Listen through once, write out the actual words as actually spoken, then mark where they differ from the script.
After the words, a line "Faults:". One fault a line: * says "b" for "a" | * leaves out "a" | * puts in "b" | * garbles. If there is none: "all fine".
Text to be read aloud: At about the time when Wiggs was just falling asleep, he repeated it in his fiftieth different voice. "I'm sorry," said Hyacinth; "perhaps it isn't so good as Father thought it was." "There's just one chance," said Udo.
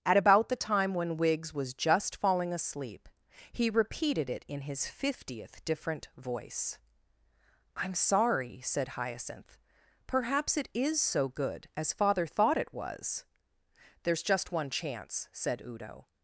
At about the time when Wiggs was just falling asleep, he repeated it in his fiftieth different voice. "I'm sorry," said Hyacinth; "perhaps it is so good as Father thought it was." "There's just one chance," said Udo.
Faults:
* says "is" for "isn't"